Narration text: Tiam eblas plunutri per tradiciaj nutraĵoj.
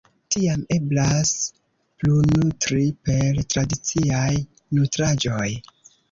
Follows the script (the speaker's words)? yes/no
yes